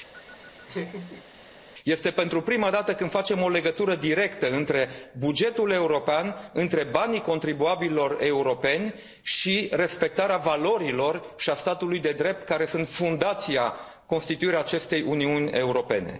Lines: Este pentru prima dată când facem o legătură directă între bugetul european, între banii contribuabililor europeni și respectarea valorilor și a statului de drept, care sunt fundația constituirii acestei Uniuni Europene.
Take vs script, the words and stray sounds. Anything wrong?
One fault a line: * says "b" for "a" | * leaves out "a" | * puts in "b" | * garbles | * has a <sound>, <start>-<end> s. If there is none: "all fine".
* has a laugh, 0.1-1.3 s